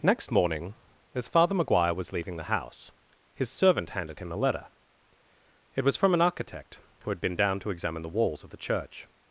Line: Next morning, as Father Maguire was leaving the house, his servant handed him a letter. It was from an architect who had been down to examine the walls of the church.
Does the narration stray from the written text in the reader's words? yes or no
no